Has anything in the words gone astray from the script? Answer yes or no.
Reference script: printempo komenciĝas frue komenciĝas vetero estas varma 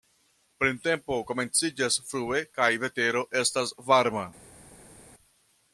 yes